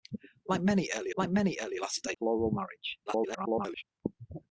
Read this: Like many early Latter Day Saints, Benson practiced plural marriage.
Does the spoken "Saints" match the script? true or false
false